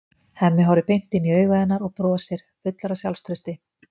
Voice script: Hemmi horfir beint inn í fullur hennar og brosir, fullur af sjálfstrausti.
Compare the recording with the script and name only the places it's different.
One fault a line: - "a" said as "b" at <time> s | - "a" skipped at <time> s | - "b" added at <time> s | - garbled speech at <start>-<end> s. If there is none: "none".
- "fullur" said as "augu" at 1.4 s